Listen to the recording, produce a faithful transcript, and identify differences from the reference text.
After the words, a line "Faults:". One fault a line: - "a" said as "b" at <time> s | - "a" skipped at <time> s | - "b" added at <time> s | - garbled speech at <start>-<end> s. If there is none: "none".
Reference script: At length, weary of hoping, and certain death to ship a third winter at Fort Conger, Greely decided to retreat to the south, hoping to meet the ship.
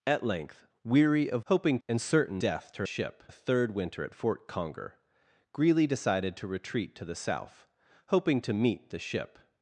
At length, weary of hoping, and certain death to ship a third winter at Fort Conger, Greely decided to retreat to the south, hoping to meet the ship.
Faults:
none